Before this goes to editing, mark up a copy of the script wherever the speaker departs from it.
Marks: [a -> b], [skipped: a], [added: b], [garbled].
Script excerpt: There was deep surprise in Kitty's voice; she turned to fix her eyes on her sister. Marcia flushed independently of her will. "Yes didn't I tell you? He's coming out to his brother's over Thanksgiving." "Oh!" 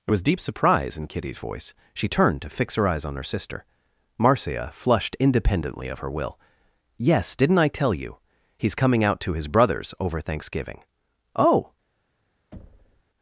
There was deep surprise in Kitty's voice; she turned to fix her eyes on her sister. Marcia flushed independently of her will. "Yes didn't I tell you? He's coming out to his brother's over Thanksgiving." "Oh!"